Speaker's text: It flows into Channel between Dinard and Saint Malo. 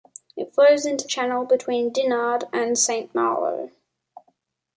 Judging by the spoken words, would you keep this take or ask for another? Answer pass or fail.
pass